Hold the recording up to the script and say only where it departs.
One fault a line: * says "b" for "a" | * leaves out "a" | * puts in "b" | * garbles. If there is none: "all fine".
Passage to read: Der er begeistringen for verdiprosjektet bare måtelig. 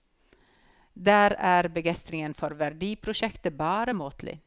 all fine